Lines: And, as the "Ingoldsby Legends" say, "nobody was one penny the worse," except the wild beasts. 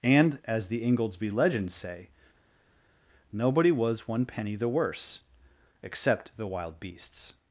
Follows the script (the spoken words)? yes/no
yes